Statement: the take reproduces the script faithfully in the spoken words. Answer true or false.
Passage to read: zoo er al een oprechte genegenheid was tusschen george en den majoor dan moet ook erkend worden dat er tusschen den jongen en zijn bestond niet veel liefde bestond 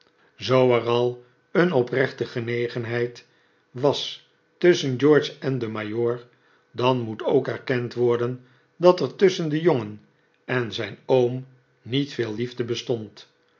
false